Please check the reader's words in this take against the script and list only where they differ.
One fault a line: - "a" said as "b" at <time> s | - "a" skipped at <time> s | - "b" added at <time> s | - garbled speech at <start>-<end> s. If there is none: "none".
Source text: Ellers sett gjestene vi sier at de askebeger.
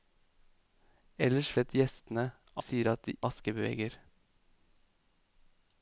none